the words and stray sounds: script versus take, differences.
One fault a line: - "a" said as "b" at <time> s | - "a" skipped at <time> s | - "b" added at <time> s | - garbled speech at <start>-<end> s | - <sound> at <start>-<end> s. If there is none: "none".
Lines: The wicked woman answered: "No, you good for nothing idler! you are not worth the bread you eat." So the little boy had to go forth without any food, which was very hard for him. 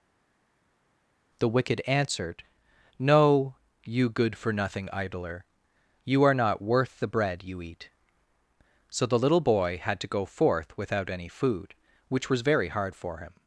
- "woman" skipped at 1.8 s